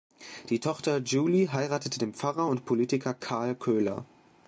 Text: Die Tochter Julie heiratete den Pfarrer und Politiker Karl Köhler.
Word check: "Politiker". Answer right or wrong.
right